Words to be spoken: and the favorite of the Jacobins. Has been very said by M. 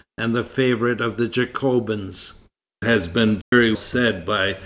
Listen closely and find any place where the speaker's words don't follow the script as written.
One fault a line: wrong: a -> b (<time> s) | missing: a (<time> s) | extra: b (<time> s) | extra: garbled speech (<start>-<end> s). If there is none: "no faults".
no faults